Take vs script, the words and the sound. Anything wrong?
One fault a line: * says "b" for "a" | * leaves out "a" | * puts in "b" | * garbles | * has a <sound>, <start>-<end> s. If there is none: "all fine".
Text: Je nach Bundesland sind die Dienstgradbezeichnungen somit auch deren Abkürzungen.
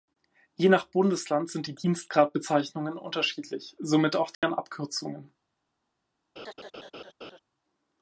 * puts in "unterschiedlich"
* has a dropout, 4.3-4.4 s
* has a laugh, 6.4-7.4 s